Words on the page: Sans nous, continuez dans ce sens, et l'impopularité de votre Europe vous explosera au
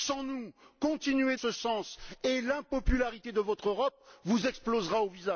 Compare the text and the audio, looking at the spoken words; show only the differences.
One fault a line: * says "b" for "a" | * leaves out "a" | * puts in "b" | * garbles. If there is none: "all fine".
* leaves out "dans"